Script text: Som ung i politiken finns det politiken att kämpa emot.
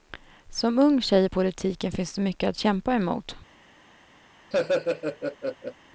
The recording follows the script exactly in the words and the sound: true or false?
false